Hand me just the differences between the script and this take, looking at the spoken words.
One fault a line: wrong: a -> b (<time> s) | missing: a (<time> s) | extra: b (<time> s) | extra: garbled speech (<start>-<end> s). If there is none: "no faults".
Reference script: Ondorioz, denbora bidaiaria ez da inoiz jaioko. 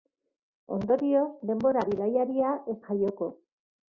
missing: da inoiz (2.8 s)